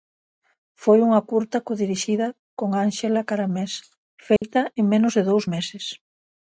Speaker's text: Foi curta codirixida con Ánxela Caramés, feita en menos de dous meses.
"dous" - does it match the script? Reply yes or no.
yes